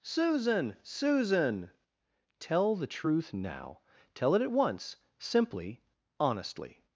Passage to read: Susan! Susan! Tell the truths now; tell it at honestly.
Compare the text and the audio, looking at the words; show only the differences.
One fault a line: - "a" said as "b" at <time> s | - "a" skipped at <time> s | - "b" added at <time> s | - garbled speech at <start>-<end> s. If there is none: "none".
- "truths" said as "truth" at 2.9 s
- "once simply" added at 4.5 s